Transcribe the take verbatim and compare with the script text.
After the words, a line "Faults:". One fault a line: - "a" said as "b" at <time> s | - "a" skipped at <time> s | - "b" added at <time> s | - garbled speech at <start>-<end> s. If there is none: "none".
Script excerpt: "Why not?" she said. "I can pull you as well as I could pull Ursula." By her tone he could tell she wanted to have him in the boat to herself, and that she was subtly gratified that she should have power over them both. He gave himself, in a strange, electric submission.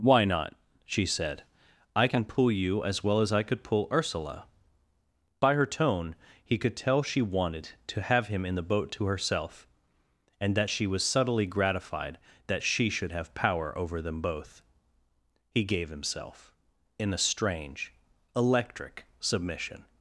"Why not?" she said. "I can pull you as well as I could pull Ursula." By her tone he could tell she wanted to have him in the boat to herself, and that she was subtly gratified that she should have power over them both. He gave himself, in a strange, electric submission.
Faults:
none